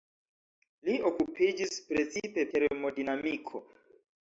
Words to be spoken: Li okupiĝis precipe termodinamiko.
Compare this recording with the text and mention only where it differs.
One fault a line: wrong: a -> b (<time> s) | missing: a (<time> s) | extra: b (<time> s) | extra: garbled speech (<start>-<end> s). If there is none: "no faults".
no faults